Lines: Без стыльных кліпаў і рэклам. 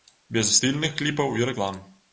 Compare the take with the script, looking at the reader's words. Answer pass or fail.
pass